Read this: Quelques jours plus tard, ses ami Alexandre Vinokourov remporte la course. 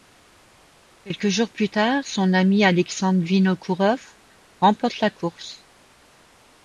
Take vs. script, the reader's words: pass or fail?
fail